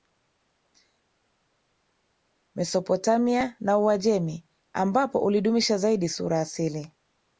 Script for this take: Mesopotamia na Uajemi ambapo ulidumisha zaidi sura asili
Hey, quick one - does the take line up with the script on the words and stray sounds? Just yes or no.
yes